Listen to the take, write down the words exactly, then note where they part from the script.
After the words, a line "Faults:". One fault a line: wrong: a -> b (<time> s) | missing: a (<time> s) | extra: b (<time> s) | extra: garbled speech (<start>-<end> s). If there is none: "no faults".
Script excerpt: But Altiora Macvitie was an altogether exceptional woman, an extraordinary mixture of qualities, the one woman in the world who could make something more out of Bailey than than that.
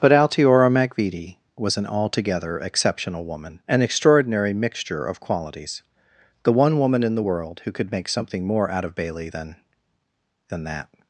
But Altiora Macvitie was an altogether exceptional woman, an extraordinary mixture of qualities, the one woman in the world who could make something more out of Bailey than than that.
Faults:
no faults